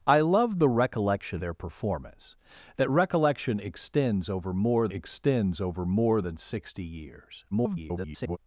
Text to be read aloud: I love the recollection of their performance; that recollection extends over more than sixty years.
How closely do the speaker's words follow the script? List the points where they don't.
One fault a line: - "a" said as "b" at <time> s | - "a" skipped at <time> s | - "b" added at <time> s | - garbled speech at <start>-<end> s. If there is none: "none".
- "of" skipped at 1.4 s
- "extends over more" added at 4.9 s
- garbled speech at 7.5-8.4 s